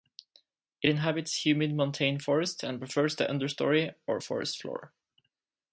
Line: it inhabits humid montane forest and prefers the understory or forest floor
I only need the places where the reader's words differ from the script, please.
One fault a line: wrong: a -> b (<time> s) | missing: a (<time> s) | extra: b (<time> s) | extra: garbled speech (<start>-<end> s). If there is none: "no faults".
no faults